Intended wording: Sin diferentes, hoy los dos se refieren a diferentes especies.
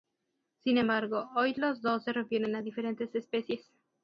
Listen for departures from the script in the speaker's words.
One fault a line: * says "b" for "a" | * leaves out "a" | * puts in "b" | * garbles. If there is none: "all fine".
* says "embargo" for "diferentes"